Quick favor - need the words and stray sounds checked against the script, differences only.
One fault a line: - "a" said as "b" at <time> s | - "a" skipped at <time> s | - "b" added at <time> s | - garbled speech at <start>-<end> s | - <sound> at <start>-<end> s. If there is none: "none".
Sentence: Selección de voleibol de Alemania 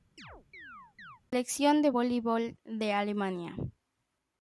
- chirp at 0.2-1.2 s